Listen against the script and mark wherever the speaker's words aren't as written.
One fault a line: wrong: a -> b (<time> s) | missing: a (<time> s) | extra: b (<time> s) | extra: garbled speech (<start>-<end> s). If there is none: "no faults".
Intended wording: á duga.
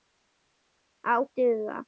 no faults